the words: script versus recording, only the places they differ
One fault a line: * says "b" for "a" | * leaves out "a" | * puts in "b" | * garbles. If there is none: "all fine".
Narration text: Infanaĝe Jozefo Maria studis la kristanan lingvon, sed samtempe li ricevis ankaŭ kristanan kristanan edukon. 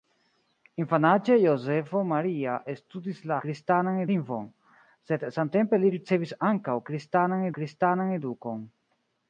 all fine